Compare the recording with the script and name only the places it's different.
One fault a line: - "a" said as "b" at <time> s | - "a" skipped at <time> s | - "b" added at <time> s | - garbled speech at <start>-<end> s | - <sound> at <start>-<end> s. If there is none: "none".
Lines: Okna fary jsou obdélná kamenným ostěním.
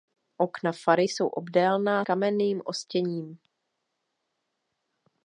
none